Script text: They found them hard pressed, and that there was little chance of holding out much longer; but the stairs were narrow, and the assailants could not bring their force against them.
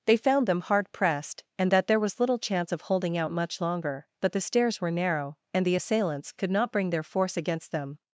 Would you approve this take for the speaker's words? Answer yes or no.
yes